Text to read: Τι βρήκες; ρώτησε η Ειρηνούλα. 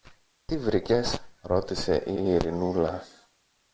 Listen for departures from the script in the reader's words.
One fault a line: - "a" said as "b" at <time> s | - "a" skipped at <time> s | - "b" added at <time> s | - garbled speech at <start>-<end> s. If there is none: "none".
- "η" added at 2.2 s